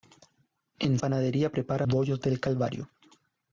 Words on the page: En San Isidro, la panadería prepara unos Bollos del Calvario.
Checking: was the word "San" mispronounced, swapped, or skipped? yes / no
yes